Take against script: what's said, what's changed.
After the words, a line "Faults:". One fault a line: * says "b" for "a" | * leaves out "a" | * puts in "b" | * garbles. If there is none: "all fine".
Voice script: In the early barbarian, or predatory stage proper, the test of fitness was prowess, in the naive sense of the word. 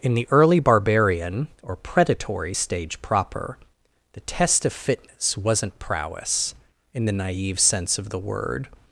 In the early barbarian, or predatory stage proper, the test of fitness wasn't prowess, in the naive sense of the word.
Faults:
* says "wasn't" for "was"